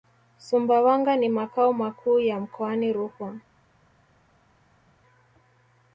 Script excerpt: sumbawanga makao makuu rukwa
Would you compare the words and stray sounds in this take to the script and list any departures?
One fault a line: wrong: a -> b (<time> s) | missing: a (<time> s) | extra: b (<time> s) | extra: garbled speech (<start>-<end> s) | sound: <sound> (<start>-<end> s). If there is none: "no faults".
extra: ni (1.2 s)
extra: ya mkoani (2.2 s)